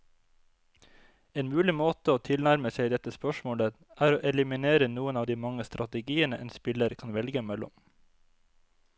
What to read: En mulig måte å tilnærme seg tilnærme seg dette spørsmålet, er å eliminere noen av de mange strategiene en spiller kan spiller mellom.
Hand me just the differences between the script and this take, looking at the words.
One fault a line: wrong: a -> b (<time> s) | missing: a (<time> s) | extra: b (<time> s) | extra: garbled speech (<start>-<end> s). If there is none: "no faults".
missing: tilnærme seg (2.9 s)
wrong: spiller -> velge (7.2 s)